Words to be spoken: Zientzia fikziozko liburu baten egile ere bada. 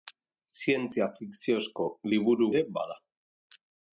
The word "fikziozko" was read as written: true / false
true